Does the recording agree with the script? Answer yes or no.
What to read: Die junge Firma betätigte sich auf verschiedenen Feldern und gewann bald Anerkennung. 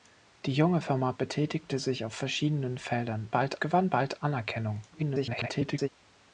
no